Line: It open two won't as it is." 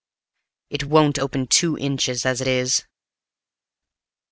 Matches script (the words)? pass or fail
fail